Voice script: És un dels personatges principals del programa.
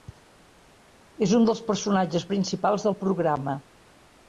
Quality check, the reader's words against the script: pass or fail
pass